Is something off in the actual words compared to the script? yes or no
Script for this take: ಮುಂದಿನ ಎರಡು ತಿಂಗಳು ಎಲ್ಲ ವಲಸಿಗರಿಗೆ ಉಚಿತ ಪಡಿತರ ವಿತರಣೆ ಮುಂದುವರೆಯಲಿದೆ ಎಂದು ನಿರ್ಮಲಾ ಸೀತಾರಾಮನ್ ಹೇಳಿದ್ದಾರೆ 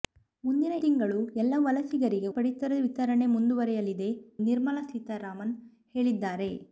yes